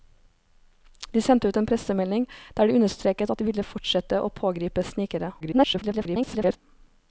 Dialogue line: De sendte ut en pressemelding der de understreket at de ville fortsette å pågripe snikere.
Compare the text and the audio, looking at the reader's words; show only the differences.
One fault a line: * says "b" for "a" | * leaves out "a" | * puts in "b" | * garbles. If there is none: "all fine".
* garbles